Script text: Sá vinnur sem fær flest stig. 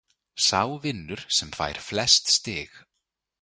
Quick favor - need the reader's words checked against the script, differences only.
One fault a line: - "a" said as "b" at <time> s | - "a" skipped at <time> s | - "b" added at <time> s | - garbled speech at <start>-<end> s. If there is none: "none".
none